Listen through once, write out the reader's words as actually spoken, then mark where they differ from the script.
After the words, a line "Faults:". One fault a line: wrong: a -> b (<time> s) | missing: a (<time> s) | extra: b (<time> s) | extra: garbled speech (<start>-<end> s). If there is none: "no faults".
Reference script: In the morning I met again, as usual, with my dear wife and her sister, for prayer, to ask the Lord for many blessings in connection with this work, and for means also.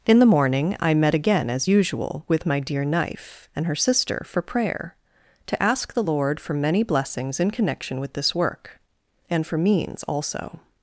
In the morning I met again, as usual, with my dear knife and her sister, for prayer, to ask the Lord for many blessings in connection with this work, and for means also.
Faults:
wrong: wife -> knife (2.8 s)